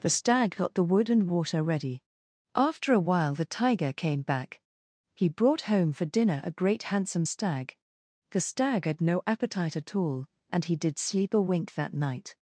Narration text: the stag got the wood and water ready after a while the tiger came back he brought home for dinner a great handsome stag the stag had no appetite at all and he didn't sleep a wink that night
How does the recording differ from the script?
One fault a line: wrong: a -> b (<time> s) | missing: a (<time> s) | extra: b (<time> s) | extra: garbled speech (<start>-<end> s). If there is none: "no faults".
wrong: didn't -> did (10.7 s)